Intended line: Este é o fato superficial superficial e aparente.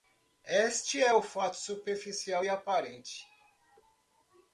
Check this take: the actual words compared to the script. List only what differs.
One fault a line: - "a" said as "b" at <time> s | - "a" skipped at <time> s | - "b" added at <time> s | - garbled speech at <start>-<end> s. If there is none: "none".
- "superficial" skipped at 2.5 s